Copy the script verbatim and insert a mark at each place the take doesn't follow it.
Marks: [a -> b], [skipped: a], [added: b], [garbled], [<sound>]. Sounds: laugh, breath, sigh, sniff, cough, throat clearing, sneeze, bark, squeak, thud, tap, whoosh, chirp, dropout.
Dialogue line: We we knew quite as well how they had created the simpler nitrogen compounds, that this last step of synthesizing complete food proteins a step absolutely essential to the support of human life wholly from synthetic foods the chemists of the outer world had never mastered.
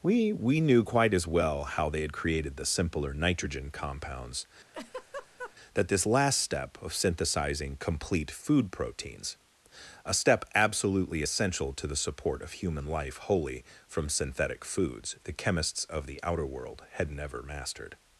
We we knew quite as well how they had created the simpler nitrogen compounds, [laugh] that this last step of synthesizing complete food proteins a step absolutely essential to the support of human life wholly from synthetic foods the chemists of the outer world had never mastered.